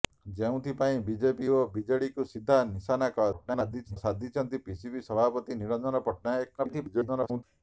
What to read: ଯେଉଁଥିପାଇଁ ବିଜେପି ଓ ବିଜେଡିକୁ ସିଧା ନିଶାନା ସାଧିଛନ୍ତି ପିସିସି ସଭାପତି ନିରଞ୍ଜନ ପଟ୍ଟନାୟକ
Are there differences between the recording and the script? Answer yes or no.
yes